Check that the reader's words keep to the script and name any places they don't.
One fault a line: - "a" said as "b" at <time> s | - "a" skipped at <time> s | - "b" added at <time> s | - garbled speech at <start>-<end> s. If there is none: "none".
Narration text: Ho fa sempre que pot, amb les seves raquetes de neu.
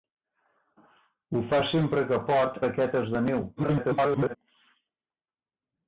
- "amb les seves" skipped at 2.6 s
- garbled speech at 3.6-4.4 s